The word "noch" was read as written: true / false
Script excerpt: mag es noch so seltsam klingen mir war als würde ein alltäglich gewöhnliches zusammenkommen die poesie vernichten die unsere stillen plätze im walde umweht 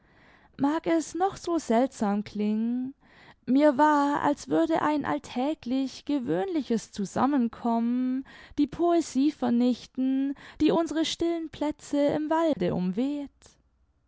true